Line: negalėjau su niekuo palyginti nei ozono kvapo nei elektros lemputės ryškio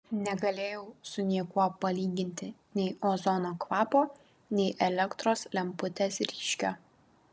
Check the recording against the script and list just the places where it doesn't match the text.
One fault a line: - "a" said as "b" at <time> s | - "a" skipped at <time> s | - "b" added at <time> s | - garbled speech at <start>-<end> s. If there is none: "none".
none